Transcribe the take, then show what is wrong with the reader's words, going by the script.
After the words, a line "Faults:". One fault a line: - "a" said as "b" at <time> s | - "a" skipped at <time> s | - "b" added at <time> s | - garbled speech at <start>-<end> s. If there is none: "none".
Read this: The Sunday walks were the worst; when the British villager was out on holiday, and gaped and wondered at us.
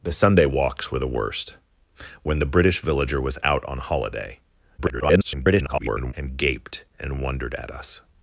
The Sunday walks were the worst; when the British villager was out on holiday, [garbled] and gaped and wondered at us.
Faults:
- garbled speech at 4.8-6.1 s